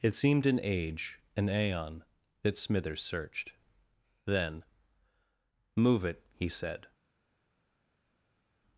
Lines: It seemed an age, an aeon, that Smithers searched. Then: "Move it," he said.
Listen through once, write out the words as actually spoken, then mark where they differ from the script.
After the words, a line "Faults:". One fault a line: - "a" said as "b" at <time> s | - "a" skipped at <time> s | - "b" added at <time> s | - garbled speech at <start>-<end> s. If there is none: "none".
It seemed an age, an aeon, that Smithers searched. Then: "Move it," he said.
Faults:
none